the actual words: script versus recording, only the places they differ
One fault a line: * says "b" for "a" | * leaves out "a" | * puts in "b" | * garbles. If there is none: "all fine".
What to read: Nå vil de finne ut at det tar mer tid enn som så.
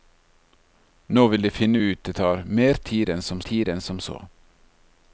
* leaves out "at"
* puts in "tid enn som"